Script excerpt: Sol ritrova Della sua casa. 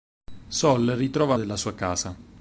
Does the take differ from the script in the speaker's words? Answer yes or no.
no